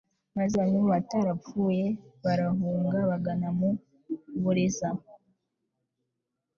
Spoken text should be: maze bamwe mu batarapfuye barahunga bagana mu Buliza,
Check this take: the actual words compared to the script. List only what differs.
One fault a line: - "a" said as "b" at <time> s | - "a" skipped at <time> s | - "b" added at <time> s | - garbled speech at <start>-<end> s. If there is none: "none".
none